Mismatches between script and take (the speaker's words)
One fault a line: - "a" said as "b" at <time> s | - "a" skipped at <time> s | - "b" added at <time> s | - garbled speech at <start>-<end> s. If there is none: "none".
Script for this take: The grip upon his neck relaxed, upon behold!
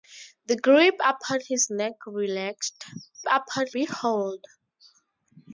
none